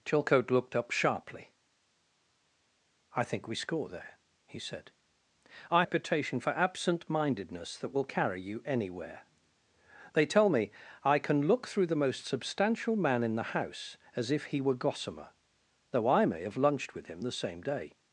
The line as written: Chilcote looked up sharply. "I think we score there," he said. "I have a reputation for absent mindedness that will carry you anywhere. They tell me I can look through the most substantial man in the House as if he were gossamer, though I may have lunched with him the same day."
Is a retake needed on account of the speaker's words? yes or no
yes